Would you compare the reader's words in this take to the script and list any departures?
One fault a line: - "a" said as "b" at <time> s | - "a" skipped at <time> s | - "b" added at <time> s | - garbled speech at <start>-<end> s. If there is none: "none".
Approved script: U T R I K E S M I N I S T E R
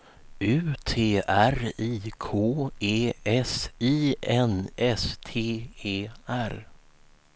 - "M" skipped at 3.7 s
- "I" skipped at 4.7 s